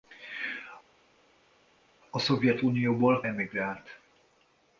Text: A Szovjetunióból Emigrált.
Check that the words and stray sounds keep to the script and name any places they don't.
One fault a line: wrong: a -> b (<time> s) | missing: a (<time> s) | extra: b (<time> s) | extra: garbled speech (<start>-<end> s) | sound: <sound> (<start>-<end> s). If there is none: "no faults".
no faults